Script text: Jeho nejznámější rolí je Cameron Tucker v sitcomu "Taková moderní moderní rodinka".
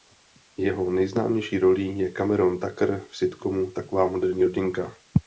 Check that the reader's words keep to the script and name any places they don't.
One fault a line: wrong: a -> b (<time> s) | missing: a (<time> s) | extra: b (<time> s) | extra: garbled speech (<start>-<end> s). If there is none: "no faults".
missing: moderní (4.5 s)